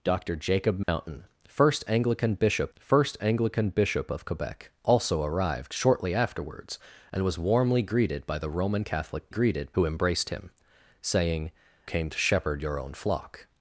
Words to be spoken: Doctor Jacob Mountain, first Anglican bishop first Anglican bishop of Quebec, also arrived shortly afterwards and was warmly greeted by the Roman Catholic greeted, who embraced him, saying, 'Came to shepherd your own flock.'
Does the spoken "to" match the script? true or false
true